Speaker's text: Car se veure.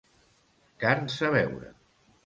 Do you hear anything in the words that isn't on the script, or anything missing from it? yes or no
no